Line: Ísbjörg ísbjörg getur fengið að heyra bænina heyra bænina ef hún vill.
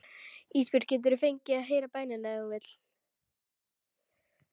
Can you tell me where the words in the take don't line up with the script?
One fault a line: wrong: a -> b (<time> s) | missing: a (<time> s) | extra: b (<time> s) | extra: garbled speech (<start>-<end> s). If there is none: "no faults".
missing: ísbjörg (0.9 s)
missing: heyra bænina (2.3 s)